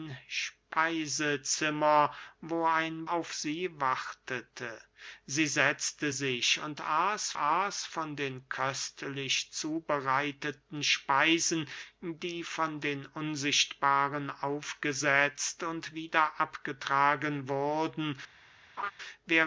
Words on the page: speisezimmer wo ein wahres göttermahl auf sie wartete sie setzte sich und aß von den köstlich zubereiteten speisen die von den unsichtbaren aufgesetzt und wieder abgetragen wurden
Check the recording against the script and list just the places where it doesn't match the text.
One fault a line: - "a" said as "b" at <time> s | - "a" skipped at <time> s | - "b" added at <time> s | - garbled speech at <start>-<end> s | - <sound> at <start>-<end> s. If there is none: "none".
- "wahres göttermahl" skipped at 3.1 s
- "aß" added at 7.3 s
- laugh at 18.8-18.9 s